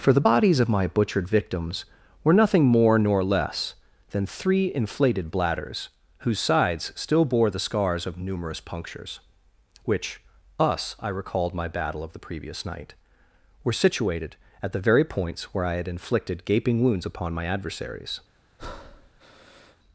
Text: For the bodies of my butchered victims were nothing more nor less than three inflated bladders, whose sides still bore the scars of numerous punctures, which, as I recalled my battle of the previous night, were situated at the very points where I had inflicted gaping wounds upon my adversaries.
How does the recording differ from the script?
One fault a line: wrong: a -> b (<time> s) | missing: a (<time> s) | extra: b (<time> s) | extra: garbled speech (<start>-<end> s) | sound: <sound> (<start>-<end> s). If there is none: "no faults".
wrong: as -> us (10.6 s)
sound: breath (18.6-19.8 s)